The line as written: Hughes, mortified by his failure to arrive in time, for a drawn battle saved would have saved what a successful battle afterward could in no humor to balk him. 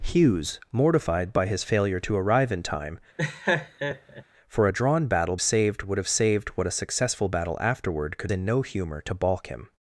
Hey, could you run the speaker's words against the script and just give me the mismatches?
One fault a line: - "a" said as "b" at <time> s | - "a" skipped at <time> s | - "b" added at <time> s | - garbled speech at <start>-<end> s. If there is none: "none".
none